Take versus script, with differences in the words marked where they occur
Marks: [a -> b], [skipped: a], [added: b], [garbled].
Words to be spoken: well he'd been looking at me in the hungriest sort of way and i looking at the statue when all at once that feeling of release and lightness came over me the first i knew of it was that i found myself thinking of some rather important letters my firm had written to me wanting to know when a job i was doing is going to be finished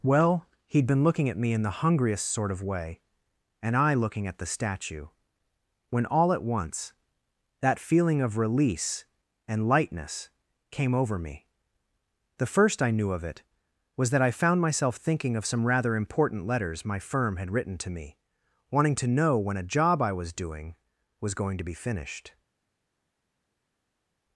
well he'd been looking at me in the hungriest sort of way and i looking at the statue when all at once that feeling of release and lightness came over me the first i knew of it was that i found myself thinking of some rather important letters my firm had written to me wanting to know when a job i was doing [is -> was] going to be finished